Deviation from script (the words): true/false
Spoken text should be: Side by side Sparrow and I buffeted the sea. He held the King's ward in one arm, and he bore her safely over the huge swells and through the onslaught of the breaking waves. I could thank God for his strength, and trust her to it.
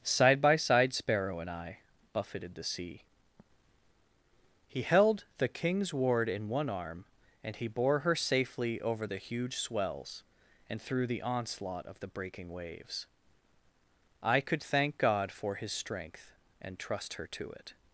false